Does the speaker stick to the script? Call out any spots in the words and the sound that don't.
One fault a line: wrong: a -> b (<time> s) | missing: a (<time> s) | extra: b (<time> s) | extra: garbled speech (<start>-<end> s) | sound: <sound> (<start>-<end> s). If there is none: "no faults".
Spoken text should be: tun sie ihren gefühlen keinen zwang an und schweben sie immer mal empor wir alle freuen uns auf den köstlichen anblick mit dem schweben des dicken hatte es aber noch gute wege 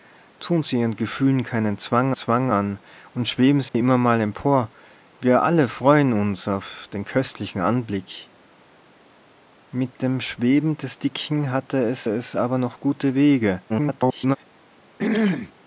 extra: zwang (2.1 s)
sound: dropout (3.7-3.7 s)
extra: es (12.0 s)
extra: garbled speech (13.7-14.4 s)
sound: throat clearing (15.0-15.5 s)